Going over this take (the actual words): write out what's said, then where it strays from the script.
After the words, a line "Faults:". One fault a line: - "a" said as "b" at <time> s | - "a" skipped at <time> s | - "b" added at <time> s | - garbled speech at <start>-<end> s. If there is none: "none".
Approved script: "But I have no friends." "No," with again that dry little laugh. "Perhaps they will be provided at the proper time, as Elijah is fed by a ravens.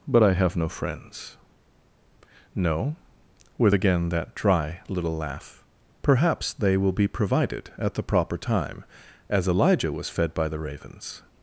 "But I have no friends." "No," with again that dry little laugh. "Perhaps they will be provided at the proper time, as Elijah was fed by the ravens.
Faults:
- "is" said as "was" at 9.9 s
- "a" said as "the" at 10.5 s